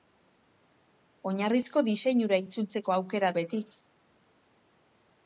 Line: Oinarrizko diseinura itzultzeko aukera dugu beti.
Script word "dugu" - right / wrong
wrong